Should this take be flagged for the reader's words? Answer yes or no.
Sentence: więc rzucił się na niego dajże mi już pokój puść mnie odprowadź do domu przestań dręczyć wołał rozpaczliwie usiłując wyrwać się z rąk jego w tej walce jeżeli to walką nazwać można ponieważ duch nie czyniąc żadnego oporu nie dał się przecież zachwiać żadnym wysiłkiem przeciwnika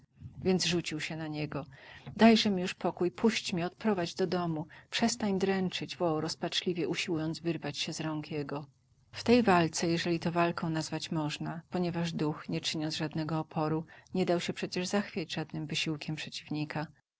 no